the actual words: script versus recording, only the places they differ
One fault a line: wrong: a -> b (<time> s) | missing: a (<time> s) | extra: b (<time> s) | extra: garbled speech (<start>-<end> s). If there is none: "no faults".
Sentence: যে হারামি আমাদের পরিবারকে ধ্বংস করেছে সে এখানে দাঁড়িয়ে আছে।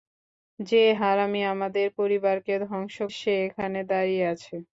missing: করেছে (3.0 s)